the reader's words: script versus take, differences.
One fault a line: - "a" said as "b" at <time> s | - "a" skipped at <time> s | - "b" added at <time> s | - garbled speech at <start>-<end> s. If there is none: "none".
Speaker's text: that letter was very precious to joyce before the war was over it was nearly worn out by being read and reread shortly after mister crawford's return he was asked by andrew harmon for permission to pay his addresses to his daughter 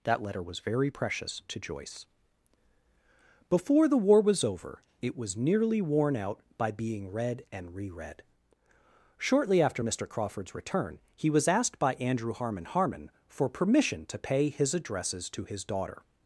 - "harmon" added at 12.6 s